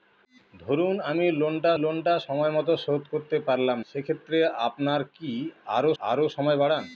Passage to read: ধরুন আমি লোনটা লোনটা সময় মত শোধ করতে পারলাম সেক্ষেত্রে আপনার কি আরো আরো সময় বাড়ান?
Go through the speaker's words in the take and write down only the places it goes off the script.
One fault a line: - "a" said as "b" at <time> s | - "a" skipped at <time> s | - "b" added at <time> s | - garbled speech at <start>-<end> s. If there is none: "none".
none